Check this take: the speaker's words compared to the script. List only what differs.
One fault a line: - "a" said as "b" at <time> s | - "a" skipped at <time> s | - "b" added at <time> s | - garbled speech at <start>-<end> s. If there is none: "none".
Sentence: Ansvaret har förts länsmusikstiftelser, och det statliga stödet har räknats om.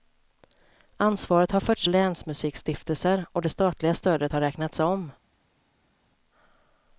none